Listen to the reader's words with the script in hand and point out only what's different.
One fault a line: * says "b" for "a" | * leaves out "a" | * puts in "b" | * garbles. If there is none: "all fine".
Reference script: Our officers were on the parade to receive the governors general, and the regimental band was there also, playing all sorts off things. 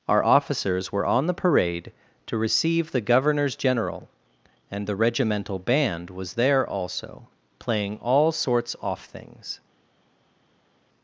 all fine